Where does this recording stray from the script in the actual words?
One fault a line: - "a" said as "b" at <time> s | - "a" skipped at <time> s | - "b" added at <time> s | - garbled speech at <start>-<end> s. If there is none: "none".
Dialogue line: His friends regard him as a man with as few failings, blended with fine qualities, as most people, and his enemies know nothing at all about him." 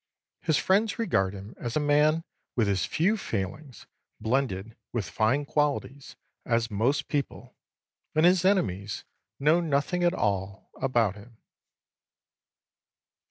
none